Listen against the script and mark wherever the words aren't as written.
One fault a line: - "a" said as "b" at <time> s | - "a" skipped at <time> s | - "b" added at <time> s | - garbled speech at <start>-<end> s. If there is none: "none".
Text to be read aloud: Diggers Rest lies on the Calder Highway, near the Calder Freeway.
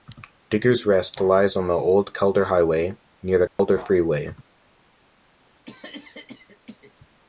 - "Old" added at 1.8 s